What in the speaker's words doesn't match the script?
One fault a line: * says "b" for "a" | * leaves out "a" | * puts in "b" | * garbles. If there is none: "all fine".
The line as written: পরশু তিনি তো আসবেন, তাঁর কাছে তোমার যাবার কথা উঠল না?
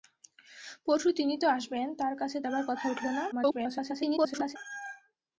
* leaves out "তোমার"
* garbles